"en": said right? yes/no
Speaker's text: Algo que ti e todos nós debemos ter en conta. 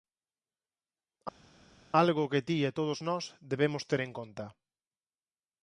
yes